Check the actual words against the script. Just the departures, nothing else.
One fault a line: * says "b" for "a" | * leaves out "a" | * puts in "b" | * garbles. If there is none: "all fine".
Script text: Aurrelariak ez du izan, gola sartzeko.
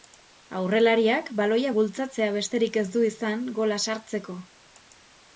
* puts in "baloia bultzatzea besterik"